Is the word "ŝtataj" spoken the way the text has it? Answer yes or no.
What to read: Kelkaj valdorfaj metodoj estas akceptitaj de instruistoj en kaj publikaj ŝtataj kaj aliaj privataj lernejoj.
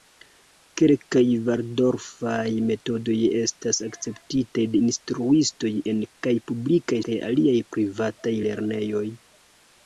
no